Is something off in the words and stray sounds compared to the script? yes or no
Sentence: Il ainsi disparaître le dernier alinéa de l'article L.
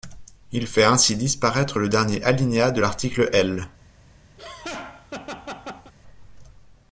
yes